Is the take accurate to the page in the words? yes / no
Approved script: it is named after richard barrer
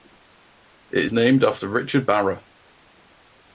yes